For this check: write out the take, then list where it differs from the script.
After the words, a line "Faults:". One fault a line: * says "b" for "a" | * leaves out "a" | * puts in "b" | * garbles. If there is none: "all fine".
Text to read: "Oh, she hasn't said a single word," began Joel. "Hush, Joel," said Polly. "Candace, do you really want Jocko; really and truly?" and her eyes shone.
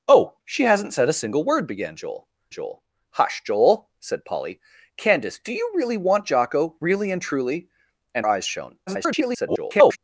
"Oh, she hasn't said a single word," began Joel Joel. "Hush, Joel," said Polly. "Candace, do you really want Jocko; really and truly?" and eyes shone. [garbled]
Faults:
* puts in "Joel"
* leaves out "her"
* garbles